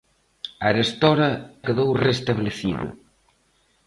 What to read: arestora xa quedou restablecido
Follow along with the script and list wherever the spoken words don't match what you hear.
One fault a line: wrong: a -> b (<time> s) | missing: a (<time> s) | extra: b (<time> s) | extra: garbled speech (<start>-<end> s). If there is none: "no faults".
missing: xa (1.3 s)